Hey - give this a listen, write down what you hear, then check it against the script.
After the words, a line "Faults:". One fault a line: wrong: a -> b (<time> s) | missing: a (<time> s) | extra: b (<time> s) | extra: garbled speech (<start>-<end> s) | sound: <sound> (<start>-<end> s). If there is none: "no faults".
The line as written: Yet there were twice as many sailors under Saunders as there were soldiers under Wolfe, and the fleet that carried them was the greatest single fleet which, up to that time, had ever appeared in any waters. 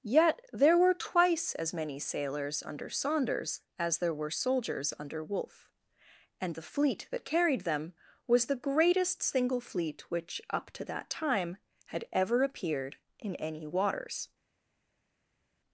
Yet there were twice as many sailors under Saunders as there were soldiers under Wolfe, and the fleet that carried them was the greatest single fleet which, up to that time, had ever appeared in any waters.
Faults:
no faults